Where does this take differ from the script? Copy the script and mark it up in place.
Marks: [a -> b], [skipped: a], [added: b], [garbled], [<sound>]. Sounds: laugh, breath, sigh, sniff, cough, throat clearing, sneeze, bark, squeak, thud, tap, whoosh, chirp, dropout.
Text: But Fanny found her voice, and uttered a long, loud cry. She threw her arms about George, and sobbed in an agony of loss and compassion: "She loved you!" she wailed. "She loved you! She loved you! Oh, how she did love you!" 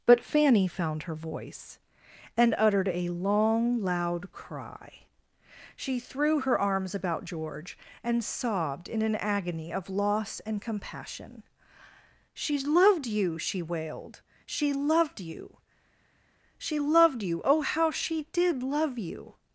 But Fanny found her voice, and uttered a long, loud cry. She threw her arms about George, and sobbed in an agony of loss and compassion: "She loved you!" she wailed. "She loved you! She loved you! Oh, how she did love you!"